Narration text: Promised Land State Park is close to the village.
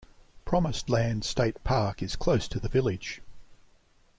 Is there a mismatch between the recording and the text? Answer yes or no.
no